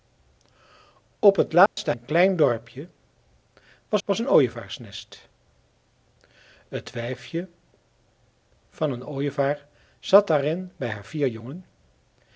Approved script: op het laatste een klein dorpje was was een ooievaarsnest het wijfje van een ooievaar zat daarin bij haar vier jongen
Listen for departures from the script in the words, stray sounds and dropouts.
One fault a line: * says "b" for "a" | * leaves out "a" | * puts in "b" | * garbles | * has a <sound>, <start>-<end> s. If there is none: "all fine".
* has a dropout, 1.7-1.8 s